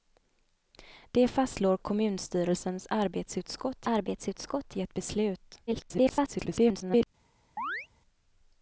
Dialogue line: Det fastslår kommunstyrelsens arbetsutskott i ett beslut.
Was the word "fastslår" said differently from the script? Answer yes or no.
no